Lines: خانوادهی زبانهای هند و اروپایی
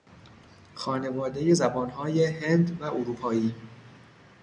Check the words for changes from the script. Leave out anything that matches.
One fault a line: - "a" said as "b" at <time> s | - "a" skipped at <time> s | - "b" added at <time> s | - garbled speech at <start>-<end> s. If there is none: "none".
none